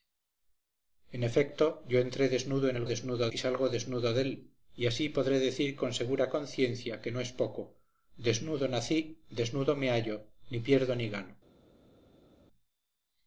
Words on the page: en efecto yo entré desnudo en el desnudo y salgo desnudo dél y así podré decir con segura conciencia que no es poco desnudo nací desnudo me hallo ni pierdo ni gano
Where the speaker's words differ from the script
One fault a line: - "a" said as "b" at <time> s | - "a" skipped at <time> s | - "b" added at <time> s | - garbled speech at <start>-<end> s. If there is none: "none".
none